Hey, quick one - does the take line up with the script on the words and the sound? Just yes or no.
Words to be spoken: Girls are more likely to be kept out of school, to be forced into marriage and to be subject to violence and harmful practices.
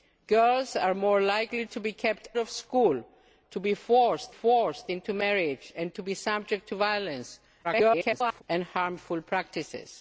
no